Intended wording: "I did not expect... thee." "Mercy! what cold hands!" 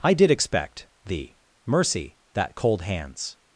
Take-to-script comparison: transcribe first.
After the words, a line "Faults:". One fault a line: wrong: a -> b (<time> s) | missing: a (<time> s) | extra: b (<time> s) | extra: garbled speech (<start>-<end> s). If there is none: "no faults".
"I did expect... thee." "Mercy! that cold hands!"
Faults:
missing: not (0.3 s)
wrong: what -> that (2.3 s)